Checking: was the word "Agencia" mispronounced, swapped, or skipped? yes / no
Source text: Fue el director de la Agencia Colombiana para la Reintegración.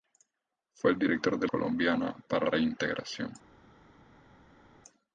yes